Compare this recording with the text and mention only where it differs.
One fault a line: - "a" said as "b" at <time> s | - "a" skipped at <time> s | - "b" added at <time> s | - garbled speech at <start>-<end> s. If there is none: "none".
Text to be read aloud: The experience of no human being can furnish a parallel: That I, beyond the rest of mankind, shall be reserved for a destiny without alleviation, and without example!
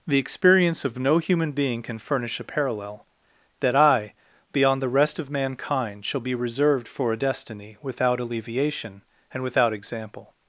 none